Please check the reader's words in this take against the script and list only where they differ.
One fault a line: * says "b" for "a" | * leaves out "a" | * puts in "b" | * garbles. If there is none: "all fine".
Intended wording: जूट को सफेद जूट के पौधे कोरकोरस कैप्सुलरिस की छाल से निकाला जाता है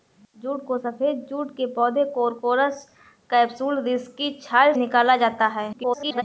* leaves out "से"
* garbles